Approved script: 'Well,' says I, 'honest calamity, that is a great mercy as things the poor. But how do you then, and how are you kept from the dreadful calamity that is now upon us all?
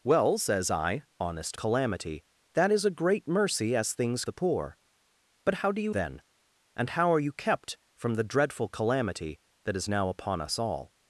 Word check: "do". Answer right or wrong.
right